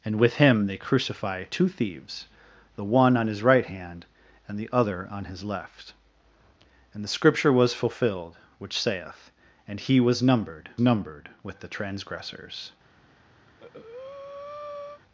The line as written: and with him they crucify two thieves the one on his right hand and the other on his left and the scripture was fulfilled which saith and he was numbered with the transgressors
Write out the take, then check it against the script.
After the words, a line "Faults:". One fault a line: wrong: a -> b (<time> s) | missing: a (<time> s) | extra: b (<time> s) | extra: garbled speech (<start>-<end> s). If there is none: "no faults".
and with him they crucify two thieves the one on his right hand and the other on his left and the scripture was fulfilled which saith and he was numbered numbered with the transgressors
Faults:
extra: numbered (10.8 s)